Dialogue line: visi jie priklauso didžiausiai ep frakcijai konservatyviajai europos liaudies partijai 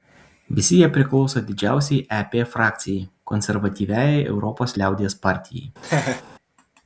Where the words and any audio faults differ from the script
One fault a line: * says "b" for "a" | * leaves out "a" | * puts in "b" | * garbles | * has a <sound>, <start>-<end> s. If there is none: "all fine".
* has a laugh, 5.8-6.2 s